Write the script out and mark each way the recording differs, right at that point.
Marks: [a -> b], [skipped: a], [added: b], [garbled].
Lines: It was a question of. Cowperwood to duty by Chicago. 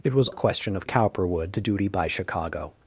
It was a question of. Cowperwood to duty by Chicago.